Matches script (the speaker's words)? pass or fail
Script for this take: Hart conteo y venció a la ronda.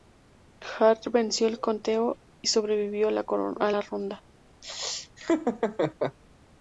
fail